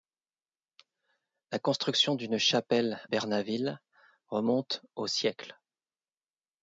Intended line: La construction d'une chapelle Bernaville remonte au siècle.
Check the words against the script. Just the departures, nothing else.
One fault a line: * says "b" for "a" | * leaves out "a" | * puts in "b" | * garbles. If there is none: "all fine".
all fine